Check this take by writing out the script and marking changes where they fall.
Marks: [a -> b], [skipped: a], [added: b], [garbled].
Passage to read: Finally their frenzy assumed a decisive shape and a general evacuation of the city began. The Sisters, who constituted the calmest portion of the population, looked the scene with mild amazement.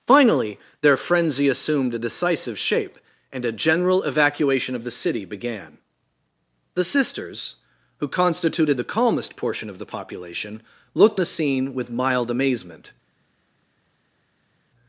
Finally their frenzy assumed a decisive shape and a general evacuation of the city began. The Sisters, who constituted the calmest portion of the population, looked the scene with mild amazement.